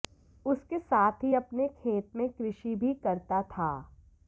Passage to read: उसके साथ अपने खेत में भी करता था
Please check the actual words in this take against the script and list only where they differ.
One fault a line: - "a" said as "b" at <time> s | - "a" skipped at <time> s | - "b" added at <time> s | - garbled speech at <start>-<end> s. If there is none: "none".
- "ही" added at 1.2 s
- "कृषि" added at 2.3 s